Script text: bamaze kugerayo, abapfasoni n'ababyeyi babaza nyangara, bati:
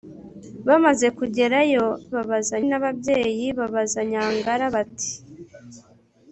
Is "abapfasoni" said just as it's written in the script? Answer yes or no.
no